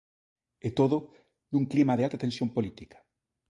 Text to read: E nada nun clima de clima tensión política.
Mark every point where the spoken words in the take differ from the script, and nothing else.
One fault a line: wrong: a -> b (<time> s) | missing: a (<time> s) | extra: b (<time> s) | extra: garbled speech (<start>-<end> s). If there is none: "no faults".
wrong: nada -> todo (0.8 s)
wrong: clima -> alta (2.1 s)